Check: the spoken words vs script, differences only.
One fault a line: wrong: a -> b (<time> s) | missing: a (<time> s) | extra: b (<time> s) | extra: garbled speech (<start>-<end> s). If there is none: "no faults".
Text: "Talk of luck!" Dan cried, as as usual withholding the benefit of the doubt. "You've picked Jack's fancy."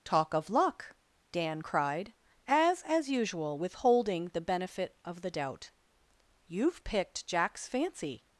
no faults